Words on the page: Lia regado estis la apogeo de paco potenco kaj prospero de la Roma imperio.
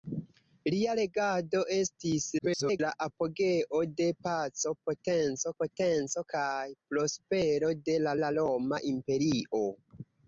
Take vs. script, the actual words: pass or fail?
fail